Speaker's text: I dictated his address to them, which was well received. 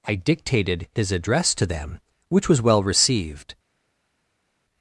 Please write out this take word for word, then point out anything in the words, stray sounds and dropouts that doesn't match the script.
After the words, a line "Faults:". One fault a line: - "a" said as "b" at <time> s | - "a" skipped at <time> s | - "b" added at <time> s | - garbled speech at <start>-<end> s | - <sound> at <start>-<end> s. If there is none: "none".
I dictated his address to them, which was well received.
Faults:
none